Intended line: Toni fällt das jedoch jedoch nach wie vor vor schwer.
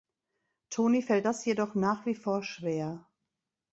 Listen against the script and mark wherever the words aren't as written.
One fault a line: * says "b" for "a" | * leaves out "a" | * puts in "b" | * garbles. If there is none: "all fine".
* leaves out "jedoch"
* leaves out "vor"